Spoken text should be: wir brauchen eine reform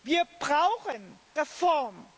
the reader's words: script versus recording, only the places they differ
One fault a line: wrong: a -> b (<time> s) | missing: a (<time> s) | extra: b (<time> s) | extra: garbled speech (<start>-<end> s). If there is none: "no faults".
missing: eine (1.2 s)